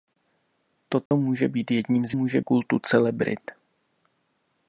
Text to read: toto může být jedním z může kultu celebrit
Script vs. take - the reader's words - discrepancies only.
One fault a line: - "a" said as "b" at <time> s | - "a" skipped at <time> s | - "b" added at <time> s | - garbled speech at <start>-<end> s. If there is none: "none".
none